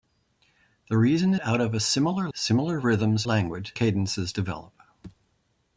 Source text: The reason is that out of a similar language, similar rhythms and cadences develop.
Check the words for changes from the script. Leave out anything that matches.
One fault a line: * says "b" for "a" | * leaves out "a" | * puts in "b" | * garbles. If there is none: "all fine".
* leaves out "is that"
* leaves out "language"
* says "language" for "and"